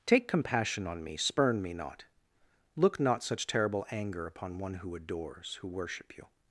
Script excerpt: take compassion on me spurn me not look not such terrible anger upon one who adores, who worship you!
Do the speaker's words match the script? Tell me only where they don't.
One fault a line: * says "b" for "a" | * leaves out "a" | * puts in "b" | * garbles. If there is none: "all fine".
all fine